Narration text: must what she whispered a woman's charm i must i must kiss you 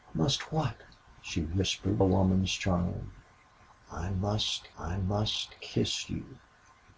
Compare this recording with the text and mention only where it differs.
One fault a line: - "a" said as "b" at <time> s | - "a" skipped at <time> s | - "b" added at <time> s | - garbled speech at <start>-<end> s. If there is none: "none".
none